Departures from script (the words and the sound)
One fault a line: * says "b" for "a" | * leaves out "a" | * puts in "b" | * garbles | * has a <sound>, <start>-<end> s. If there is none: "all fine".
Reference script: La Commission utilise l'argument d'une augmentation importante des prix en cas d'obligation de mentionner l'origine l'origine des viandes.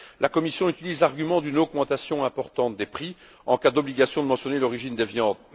* leaves out "l'origine"